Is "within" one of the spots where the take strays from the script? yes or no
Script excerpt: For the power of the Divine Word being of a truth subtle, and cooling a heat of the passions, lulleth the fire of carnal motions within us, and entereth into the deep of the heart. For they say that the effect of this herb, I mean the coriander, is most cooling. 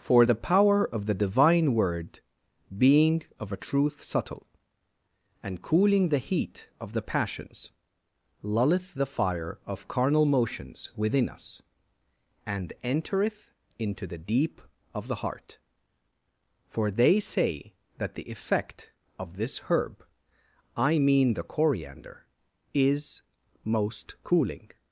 no